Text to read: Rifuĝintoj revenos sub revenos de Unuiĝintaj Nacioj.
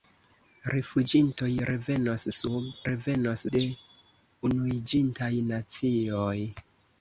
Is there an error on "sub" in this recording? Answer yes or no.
no